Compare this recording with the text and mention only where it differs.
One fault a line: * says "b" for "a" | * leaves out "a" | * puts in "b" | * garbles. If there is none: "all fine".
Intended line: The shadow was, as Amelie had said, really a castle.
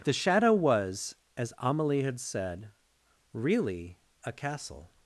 all fine